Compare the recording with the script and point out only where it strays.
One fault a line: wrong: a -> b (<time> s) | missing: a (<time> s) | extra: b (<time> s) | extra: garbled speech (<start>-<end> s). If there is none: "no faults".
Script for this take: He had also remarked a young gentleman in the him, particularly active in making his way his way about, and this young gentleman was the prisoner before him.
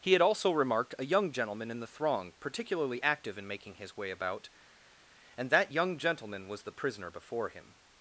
wrong: him -> throng (1.9 s)
missing: his way (4.1 s)
wrong: this -> that (5.5 s)